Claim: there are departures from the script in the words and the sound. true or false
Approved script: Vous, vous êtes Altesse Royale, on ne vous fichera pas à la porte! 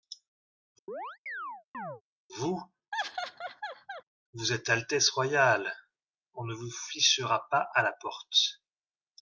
true